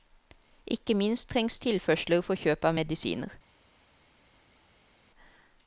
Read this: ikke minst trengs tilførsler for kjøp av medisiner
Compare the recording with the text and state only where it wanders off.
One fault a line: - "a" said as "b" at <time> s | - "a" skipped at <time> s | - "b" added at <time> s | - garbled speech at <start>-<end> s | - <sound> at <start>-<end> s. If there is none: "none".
none